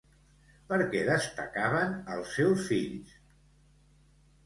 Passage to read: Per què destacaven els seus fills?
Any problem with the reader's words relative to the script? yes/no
no